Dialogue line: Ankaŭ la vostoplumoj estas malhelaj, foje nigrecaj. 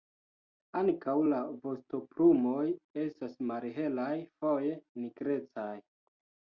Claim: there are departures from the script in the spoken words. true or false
false